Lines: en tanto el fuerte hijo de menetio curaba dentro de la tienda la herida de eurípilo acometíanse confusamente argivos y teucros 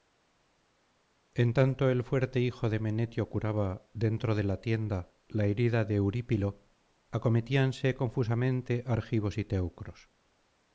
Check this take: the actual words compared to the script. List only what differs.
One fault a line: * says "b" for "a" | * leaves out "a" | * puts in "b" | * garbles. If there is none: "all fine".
all fine